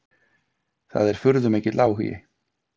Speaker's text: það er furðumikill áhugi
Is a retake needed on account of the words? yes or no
no